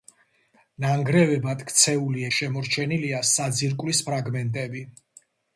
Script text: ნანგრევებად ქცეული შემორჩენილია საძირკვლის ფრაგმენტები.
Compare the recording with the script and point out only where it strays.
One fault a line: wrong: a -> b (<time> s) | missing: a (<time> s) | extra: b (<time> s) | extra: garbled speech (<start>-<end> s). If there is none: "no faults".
no faults